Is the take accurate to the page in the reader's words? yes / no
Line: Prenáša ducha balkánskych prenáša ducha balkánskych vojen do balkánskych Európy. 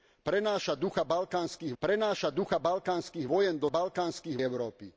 yes